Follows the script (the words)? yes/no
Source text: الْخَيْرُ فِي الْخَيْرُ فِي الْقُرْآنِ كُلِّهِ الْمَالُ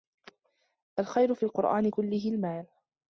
no